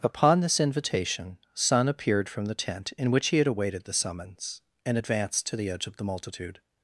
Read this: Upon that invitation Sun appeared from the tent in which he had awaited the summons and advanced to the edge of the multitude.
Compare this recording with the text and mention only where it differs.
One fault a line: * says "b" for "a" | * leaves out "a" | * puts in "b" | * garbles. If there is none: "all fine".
* says "this" for "that"